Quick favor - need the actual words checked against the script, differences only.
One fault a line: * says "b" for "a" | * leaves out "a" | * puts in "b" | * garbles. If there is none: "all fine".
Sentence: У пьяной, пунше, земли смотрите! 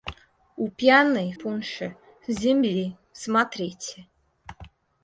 all fine